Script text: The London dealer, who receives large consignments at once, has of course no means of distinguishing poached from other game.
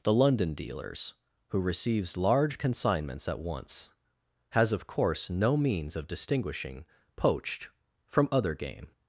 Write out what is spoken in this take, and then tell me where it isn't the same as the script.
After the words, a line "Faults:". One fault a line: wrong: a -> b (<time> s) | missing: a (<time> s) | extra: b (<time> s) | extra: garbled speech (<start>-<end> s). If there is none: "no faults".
The London dealers, who receives large consignments at once, has of course no means of distinguishing poached from other game.
Faults:
wrong: dealer -> dealers (0.5 s)